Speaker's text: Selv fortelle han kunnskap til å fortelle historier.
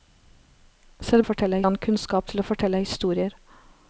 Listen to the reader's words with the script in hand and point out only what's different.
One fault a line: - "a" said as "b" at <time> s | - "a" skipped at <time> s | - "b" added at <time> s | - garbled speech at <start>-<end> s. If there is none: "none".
none